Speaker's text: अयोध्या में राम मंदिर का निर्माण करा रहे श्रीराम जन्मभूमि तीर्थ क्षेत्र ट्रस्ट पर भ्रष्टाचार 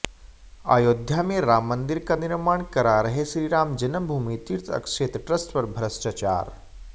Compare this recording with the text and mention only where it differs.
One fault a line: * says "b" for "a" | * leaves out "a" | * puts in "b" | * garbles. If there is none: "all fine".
all fine